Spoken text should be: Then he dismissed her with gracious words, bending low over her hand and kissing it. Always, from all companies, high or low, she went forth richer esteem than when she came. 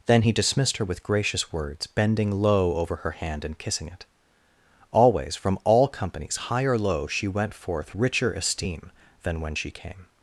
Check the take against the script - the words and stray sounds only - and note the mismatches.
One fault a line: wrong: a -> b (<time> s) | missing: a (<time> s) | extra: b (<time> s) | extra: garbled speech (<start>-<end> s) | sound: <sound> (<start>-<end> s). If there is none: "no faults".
no faults